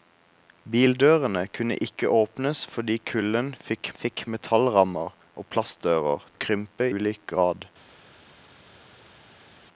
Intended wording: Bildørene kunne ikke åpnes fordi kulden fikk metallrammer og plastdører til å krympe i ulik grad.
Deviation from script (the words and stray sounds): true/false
true